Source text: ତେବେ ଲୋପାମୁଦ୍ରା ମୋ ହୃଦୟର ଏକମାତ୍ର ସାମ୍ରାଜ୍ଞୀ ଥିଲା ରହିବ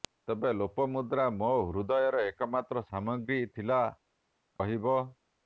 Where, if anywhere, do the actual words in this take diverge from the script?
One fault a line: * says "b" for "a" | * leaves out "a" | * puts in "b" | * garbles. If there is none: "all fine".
all fine